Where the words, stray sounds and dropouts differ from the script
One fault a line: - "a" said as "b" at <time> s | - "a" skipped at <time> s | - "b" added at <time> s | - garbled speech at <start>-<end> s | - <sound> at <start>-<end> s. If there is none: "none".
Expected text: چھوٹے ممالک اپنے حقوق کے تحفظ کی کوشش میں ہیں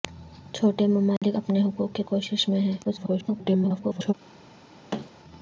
- dropout at 1.2-1.2 s
- "تحفظ کی" skipped at 2.0 s
- garbled speech at 2.8-4.1 s
- thud at 4.9-5.1 s